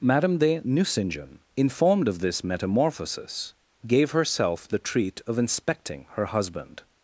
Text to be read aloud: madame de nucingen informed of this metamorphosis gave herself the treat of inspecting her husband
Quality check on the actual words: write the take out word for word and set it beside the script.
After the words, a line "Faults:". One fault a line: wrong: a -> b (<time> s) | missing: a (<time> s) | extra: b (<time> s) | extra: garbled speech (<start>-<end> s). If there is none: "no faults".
madame de nucingen informed of this metamorphosis gave herself the treat of inspecting her husband
Faults:
no faults